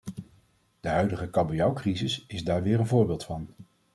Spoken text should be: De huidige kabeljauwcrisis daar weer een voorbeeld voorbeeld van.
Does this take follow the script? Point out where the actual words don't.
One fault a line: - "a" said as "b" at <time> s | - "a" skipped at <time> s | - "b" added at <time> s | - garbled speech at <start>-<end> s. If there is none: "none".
- "is" added at 2.3 s
- "voorbeeld" skipped at 3.2 s